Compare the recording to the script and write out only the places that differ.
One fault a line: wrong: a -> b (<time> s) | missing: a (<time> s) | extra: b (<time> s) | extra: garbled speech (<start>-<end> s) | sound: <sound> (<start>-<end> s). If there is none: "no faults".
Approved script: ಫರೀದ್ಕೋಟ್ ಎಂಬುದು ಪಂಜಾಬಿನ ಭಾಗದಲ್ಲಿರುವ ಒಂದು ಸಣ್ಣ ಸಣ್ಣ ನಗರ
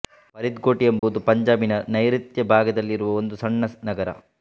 sound: dropout (1.0-1.0 s)
extra: ನೈಋತ್ಯ (1.9 s)
missing: ಸಣ್ಣ (3.6 s)